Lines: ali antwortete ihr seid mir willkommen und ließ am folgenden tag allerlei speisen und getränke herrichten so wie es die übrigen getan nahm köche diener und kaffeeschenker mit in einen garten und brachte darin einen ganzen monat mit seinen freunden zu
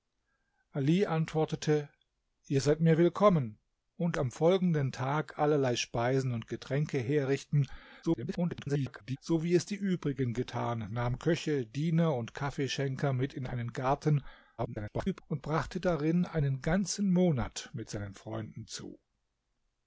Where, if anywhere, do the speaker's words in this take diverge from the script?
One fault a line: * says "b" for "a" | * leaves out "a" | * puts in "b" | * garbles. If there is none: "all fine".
* leaves out "ließ"
* garbles
* garbles